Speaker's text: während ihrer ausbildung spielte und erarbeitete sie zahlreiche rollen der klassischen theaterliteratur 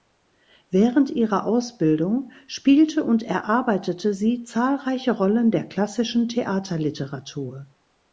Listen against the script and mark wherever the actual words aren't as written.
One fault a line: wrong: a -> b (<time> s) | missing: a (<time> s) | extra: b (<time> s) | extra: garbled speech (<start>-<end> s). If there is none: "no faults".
no faults